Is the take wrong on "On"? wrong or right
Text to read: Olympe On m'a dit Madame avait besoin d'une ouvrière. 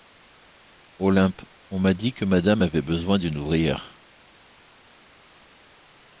right